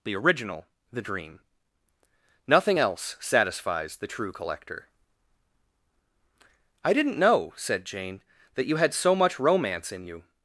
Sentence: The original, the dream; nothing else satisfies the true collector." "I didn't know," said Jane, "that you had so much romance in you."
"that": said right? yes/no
yes